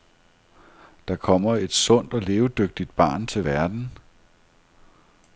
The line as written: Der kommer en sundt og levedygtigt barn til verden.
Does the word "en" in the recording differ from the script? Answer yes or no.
yes